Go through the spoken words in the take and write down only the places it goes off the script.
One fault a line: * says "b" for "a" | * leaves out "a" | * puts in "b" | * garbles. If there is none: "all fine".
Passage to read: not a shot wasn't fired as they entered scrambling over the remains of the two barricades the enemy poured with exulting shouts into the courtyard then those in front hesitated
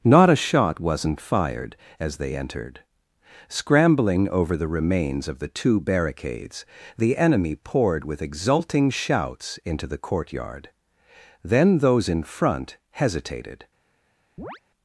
all fine